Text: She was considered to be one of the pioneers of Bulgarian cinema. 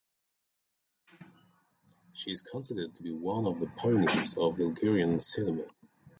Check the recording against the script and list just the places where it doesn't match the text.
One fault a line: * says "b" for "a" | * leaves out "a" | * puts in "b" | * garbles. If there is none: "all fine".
* says "is" for "was"